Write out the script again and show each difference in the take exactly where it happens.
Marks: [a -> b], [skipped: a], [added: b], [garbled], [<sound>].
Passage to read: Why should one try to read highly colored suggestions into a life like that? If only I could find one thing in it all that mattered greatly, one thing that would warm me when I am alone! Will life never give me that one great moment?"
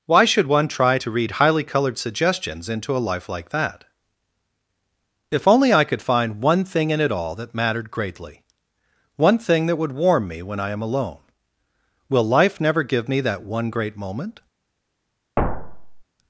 Why should one try to read highly colored suggestions into a life like that? If only I could find one thing in it all that mattered greatly, one thing that would warm me when I am alone! Will life never give me that one great moment?" [thud]